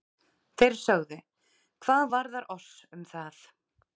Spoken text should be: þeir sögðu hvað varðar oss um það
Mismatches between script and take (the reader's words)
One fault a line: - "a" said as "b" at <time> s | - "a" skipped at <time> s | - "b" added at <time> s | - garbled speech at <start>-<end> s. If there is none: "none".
none